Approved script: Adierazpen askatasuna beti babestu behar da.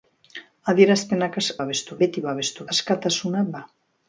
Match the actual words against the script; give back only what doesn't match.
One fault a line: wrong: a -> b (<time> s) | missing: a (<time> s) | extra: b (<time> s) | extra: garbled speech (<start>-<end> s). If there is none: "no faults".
wrong: askatasuna -> babestu (1.6 s)
wrong: behar -> askatasuna (2.7 s)